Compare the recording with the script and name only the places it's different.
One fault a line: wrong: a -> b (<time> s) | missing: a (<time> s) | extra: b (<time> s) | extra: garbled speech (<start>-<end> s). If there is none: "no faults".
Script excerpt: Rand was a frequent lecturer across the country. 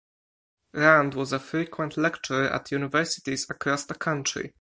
extra: at universities (2.5 s)